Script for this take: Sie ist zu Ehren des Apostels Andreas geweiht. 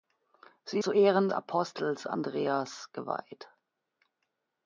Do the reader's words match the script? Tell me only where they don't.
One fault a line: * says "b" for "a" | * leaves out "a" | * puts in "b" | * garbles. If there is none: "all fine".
* leaves out "ist"
* leaves out "des"